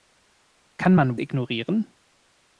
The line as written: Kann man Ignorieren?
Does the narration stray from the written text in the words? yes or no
no